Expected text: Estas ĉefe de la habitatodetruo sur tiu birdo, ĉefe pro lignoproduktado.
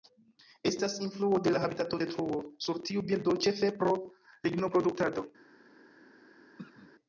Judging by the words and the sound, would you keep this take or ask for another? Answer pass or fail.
fail